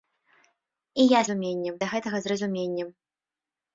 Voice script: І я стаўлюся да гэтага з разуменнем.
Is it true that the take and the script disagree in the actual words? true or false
true